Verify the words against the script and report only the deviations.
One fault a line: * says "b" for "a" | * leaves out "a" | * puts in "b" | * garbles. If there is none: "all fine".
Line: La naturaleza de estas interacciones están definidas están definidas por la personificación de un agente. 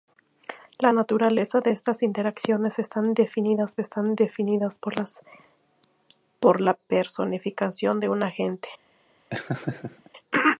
all fine